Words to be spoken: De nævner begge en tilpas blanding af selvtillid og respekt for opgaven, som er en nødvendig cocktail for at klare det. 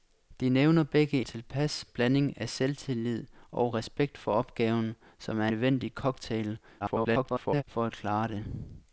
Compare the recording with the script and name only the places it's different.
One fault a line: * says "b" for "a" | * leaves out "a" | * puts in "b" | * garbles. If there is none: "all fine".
* leaves out "en"
* leaves out "en"
* garbles